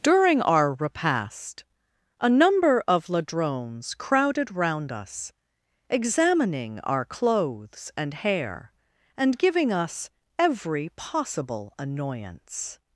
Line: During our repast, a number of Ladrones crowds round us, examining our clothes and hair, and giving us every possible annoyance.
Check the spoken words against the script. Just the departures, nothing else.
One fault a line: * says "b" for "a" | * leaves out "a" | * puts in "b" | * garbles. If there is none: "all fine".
* says "crowded" for "crowds"